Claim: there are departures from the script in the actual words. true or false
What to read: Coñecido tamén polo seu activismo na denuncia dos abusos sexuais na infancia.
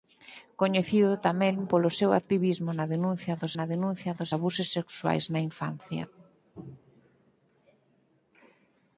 true